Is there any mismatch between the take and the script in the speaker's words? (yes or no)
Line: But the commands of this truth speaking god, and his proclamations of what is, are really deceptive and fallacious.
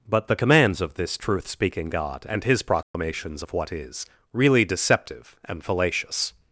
yes